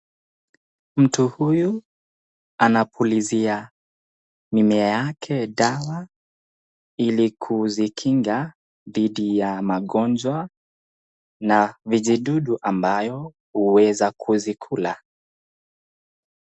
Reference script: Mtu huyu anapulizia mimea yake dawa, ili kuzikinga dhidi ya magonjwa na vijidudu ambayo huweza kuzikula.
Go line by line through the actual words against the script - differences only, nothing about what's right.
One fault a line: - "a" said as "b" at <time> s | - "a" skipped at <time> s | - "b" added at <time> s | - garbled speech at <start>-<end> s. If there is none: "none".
none